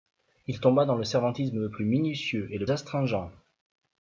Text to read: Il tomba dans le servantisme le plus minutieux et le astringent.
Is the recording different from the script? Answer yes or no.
no